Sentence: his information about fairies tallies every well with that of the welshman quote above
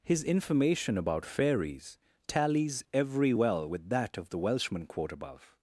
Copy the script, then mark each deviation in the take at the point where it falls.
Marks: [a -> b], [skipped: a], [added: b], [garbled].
his information about fairies tallies every well with that of the welshman quote above